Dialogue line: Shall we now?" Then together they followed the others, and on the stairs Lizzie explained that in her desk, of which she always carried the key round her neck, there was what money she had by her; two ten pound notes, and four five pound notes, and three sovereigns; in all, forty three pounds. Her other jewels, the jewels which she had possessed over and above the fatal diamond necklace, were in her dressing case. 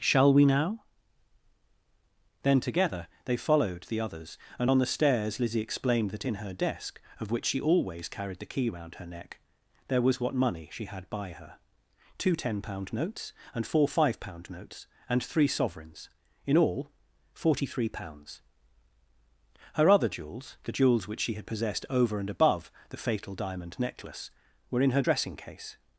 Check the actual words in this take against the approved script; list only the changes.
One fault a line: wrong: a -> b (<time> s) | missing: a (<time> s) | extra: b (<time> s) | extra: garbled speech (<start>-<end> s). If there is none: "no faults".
no faults